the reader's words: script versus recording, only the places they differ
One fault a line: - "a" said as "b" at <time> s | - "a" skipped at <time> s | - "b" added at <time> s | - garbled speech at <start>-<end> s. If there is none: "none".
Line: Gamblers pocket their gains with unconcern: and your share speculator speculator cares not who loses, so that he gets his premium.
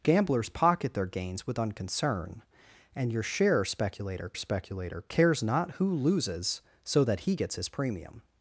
none